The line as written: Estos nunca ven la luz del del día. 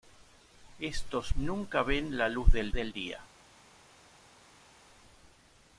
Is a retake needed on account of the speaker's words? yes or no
no